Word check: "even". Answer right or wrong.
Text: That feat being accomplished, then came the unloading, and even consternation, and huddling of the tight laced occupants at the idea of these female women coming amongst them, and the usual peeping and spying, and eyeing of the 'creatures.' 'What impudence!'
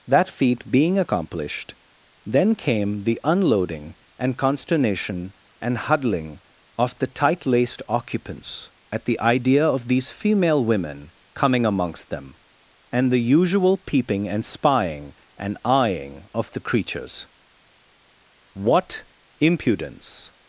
wrong